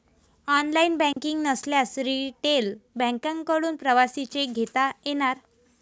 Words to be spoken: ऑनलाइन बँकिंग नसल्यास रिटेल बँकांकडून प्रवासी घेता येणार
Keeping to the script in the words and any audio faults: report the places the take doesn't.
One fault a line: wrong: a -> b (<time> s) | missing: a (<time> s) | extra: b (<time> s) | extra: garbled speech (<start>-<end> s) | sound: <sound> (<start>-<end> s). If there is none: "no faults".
sound: dropout (1.1-1.2 s)
extra: चेक (4.2 s)